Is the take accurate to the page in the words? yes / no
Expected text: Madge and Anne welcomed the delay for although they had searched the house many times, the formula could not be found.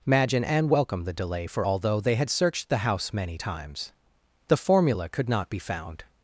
yes